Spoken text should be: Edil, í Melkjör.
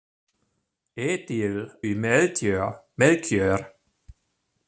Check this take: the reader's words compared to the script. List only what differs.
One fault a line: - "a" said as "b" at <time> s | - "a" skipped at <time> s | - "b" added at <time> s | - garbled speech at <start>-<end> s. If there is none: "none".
none